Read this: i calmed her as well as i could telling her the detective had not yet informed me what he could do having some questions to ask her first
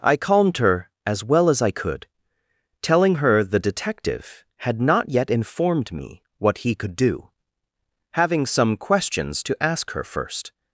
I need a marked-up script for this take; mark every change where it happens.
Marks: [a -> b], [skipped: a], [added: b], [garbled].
i calmed her as well as i could telling her the detective had not yet informed me what he could do having some questions to ask her first